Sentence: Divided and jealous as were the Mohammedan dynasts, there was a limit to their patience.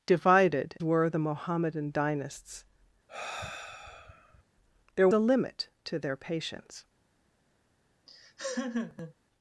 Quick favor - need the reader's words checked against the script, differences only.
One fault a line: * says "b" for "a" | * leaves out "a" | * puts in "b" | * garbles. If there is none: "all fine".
* leaves out "and jealous as"
* leaves out "was"